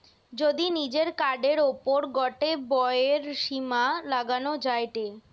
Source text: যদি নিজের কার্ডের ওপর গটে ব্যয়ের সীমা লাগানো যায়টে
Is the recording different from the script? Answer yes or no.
no